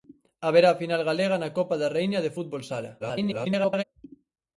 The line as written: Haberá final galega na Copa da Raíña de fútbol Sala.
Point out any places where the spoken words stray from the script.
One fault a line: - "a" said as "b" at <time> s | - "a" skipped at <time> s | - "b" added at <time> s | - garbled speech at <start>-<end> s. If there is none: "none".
- garbled speech at 3.0-3.8 s